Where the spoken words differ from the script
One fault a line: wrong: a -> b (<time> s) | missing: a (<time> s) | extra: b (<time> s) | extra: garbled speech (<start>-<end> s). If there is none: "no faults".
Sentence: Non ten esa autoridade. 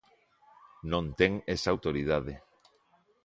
no faults